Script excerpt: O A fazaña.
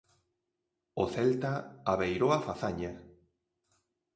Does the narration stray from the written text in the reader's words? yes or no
yes